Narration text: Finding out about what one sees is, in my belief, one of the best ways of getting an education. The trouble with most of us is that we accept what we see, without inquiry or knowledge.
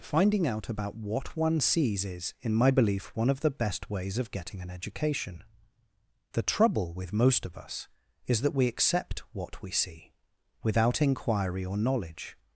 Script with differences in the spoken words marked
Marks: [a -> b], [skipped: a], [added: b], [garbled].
Finding out about what one sees is, in my belief, one of the best ways of getting an education. The trouble with most of us is that we accept what we see, without inquiry or knowledge.